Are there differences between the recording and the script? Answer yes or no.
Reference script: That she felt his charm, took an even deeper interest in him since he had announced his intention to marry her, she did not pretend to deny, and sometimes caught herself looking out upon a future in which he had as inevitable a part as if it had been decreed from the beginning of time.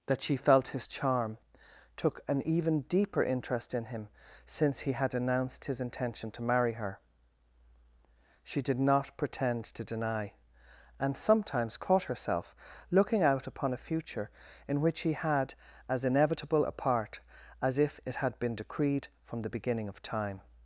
no